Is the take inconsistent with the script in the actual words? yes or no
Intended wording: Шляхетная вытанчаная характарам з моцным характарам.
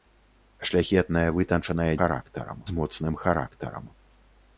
no